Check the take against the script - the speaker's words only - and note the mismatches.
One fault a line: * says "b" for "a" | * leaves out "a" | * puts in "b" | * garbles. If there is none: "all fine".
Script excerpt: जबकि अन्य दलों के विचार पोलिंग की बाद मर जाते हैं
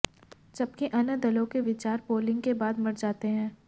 * says "के" for "की"